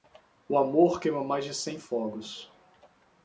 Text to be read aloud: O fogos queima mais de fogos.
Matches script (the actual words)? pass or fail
fail